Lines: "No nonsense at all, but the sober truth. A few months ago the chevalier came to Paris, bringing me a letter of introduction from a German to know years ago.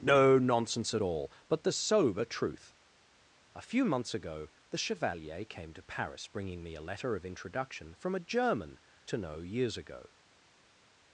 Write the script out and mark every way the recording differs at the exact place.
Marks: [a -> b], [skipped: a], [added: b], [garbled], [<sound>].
"No nonsense at all, but the sober truth. A few months ago the chevalier came to Paris, bringing me a letter of introduction from a German to know years ago.